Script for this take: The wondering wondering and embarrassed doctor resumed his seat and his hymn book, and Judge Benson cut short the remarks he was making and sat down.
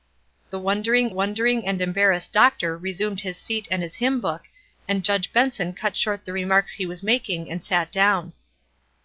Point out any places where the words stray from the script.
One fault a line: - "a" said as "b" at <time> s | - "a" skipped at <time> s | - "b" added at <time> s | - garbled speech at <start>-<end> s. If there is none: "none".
none